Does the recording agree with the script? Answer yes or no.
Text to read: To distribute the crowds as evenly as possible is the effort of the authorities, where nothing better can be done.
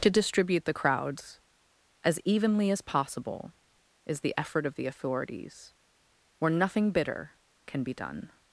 no